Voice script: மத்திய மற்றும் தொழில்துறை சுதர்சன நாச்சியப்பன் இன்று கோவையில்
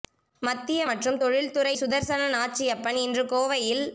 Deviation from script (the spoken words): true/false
false